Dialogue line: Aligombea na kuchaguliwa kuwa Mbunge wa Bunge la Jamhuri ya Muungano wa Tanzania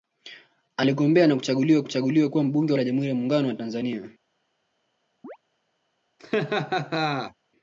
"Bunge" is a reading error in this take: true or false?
true